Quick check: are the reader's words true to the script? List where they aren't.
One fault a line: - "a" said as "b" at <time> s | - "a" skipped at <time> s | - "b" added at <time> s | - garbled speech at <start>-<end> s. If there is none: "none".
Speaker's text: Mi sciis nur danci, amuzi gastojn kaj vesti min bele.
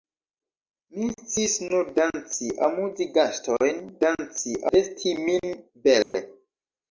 - "kaj" said as "danci" at 4.0 s